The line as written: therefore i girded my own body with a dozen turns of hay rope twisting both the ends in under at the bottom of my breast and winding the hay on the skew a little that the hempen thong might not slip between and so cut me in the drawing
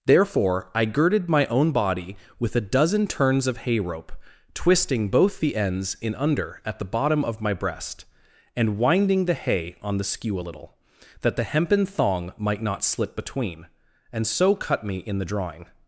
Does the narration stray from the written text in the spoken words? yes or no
no